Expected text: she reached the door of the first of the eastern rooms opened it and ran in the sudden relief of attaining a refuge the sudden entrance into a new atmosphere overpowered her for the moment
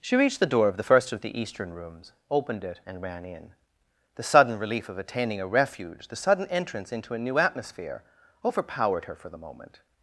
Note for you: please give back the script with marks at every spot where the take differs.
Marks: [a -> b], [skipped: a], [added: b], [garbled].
she reached the door of the first of the eastern rooms opened it and ran in the sudden relief of attaining a refuge the sudden entrance into a new atmosphere overpowered her for the moment